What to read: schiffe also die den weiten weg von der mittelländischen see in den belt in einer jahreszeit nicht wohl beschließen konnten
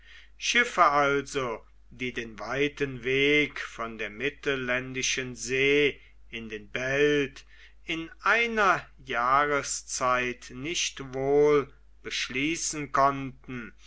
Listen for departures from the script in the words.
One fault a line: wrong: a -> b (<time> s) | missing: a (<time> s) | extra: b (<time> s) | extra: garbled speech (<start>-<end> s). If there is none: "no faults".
no faults